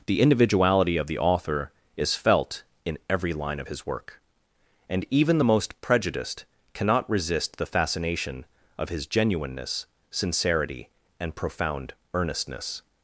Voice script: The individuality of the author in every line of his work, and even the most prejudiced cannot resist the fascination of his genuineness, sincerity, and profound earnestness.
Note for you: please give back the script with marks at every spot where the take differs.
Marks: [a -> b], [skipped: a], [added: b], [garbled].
The individuality of the author [added: is felt] in every line of his work, and even the most prejudiced cannot resist the fascination of his genuineness, sincerity, and profound earnestness.